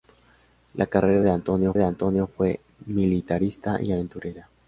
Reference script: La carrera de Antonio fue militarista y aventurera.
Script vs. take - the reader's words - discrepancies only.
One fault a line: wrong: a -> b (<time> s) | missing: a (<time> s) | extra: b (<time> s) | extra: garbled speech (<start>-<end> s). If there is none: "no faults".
extra: de Antonio (1.7 s)